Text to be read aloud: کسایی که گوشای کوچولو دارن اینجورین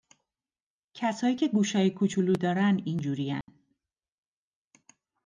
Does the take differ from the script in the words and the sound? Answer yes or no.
yes